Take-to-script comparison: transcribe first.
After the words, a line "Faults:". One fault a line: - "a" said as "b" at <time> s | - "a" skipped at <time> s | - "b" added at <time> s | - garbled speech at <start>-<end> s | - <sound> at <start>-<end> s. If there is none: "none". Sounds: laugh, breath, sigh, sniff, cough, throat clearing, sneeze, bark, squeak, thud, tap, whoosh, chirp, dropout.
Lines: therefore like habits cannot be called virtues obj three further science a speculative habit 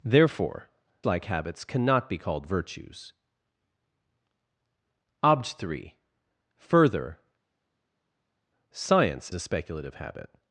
therefore like habits cannot be called virtues obj three further science a speculative habit
Faults:
none